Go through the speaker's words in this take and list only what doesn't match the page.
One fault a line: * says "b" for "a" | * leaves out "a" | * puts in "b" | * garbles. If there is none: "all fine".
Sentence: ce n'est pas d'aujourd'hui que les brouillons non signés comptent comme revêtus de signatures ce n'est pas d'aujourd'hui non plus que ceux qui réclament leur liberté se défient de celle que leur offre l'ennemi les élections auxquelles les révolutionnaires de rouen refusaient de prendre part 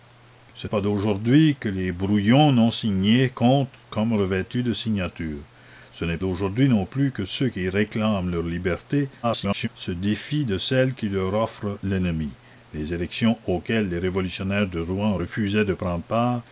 * leaves out "n'est"
* leaves out "pas"
* garbles